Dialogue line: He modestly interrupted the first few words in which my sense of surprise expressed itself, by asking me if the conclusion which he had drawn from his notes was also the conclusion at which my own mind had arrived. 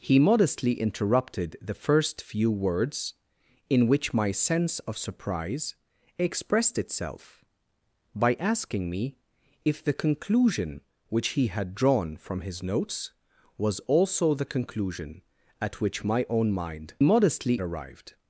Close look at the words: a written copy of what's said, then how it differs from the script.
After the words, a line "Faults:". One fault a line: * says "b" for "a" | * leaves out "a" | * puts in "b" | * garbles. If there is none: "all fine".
He modestly interrupted the first few words in which my sense of surprise expressed itself, by asking me if the conclusion which he had drawn from his notes was also the conclusion at which my own mind modestly arrived.
Faults:
* says "modestly" for "had"